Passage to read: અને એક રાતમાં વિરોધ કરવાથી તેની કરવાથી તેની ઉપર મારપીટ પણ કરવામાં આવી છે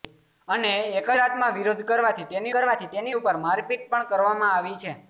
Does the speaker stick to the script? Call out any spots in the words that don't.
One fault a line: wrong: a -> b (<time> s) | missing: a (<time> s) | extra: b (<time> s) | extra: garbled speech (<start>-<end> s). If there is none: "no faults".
no faults